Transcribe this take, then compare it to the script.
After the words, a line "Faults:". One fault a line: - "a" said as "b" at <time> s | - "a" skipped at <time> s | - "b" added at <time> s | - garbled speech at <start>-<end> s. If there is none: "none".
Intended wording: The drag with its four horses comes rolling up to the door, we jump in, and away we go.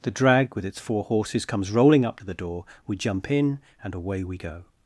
The drag with its four horses comes rolling up to the door, we jump in, and away we go.
Faults:
none